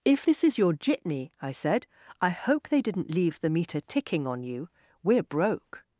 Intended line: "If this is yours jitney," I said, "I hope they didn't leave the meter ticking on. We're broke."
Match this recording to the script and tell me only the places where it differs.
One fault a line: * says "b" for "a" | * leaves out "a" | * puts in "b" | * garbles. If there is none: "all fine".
* says "your" for "yours"
* puts in "you"